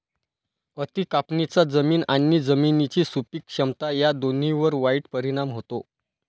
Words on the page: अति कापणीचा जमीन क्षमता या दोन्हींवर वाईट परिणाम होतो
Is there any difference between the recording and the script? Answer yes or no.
yes